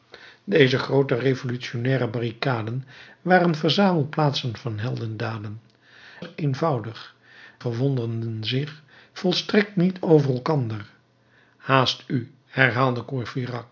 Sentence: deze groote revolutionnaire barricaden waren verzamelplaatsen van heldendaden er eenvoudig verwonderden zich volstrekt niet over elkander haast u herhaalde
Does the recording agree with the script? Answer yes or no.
yes